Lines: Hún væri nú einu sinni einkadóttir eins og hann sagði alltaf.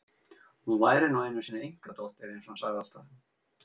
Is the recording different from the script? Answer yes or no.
no